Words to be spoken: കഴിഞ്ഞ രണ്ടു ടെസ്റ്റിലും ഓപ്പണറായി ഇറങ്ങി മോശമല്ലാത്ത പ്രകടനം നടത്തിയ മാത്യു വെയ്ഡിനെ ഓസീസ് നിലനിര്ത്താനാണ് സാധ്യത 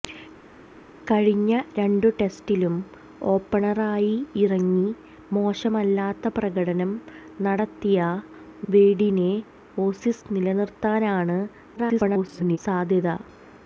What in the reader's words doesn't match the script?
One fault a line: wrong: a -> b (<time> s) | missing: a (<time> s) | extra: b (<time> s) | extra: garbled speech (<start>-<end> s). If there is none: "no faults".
missing: മാത്യു (8.0 s)
extra: garbled speech (11.8-12.6 s)